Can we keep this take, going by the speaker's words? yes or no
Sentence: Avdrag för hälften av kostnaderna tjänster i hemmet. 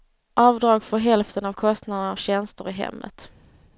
yes